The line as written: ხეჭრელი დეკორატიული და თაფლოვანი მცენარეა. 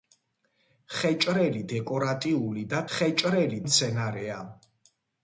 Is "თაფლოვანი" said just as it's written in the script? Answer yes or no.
no